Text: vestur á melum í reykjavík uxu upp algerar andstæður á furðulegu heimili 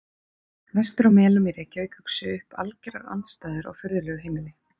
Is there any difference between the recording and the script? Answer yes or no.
no